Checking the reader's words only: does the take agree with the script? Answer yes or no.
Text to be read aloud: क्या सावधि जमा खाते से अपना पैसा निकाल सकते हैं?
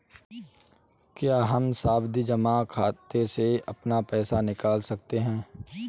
no